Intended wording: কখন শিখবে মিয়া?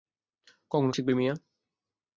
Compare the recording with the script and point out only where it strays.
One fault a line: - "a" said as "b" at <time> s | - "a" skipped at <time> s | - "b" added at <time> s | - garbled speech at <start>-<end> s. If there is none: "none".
none